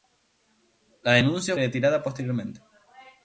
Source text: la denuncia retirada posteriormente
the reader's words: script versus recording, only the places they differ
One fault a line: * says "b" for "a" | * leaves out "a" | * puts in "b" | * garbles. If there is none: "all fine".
all fine